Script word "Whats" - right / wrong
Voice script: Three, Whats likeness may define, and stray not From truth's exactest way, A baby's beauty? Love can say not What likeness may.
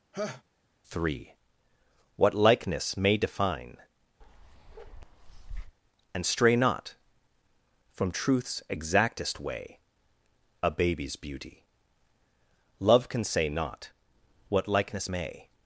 wrong